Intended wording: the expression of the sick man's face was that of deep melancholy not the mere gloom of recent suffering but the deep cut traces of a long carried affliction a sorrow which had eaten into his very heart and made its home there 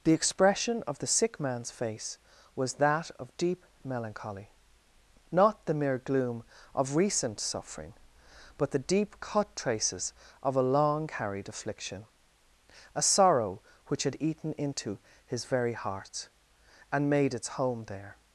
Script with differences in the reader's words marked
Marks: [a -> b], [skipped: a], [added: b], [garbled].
the expression of the sick man's face was that of deep melancholy not the mere gloom of recent suffering but the deep cut traces of a long carried affliction a sorrow which had eaten into his very heart and made its home there